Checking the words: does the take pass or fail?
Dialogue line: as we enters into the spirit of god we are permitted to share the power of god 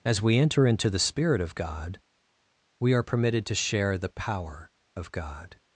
fail